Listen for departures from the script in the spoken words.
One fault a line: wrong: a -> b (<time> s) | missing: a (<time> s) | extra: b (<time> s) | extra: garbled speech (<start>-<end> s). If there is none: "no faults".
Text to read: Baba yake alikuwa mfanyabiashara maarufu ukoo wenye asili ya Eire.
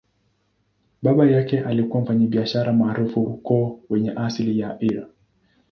no faults